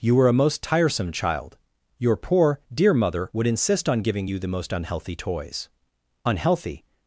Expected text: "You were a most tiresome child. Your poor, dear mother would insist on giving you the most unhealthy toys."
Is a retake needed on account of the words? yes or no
yes